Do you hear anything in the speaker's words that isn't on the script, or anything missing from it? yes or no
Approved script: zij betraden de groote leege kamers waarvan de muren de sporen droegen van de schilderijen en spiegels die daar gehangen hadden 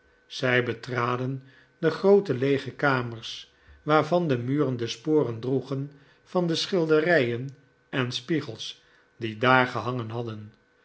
no